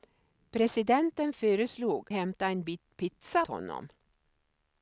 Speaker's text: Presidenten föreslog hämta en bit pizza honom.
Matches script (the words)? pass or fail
pass